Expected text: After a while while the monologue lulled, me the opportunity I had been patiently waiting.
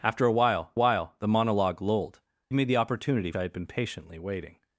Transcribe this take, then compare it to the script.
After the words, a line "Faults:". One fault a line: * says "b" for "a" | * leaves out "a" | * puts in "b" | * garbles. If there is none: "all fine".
After a while while the monologue lulled, me the opportunity I had been patiently waiting.
Faults:
all fine